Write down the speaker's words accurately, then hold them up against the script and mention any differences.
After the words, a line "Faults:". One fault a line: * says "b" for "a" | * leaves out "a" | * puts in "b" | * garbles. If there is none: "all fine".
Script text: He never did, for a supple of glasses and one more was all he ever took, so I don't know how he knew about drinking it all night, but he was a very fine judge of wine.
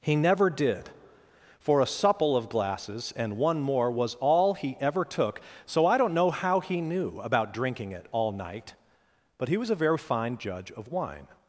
He never did, for a supple of glasses and one more was all he ever took, so I don't know how he knew about drinking it all night, but he was a very fine judge of wine.
Faults:
all fine